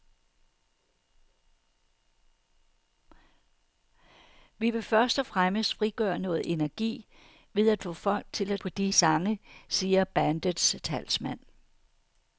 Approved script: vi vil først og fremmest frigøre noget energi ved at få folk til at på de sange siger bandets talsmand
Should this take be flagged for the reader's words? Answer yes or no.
no